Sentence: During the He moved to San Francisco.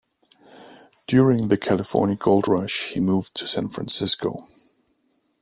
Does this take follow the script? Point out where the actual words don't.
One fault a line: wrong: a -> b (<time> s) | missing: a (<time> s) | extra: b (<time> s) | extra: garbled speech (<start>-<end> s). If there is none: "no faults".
extra: California Gold Rush (1.6 s)